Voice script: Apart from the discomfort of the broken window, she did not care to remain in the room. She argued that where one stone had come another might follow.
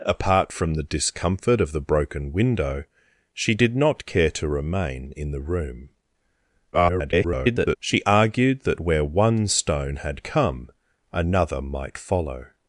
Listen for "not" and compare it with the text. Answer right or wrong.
right